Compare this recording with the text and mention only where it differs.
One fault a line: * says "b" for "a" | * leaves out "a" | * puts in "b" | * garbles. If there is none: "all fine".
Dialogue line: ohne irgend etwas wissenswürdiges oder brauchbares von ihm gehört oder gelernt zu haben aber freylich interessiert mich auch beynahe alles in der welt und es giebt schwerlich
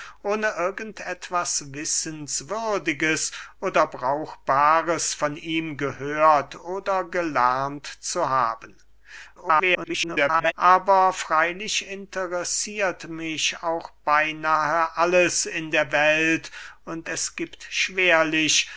* garbles